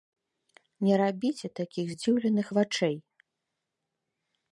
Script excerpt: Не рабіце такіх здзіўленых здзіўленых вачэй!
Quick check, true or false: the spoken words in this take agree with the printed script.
false